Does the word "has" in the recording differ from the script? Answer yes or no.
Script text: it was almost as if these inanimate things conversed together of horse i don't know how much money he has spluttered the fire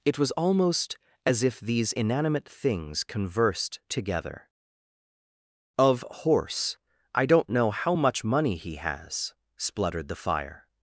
no